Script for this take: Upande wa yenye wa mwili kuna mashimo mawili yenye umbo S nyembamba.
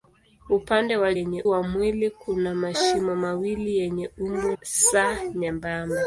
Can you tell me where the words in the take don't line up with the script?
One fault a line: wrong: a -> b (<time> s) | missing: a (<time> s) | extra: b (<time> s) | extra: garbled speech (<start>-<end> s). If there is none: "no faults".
no faults